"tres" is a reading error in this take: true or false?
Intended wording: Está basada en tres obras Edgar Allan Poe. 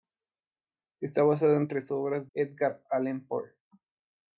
false